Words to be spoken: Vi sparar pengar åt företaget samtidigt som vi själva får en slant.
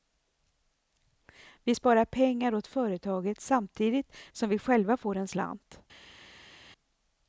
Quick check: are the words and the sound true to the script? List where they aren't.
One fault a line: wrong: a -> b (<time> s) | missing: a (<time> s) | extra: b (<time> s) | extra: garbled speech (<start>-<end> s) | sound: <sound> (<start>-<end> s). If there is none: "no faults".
no faults